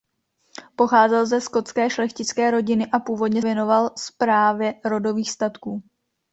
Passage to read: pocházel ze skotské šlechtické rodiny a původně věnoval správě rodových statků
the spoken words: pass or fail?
pass